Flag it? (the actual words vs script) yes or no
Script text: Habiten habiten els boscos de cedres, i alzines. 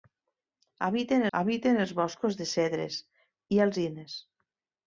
no